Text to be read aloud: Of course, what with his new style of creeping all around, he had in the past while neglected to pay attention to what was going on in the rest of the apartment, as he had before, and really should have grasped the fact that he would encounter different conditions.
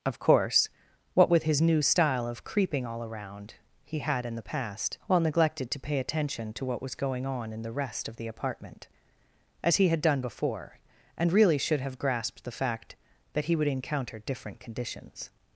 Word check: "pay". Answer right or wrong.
right